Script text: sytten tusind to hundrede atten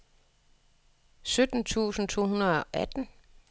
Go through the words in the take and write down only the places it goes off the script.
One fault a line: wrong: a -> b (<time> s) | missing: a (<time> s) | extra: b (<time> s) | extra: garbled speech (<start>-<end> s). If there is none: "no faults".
no faults